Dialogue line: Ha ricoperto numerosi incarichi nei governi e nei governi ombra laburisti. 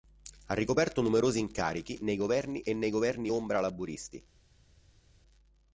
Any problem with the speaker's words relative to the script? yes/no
no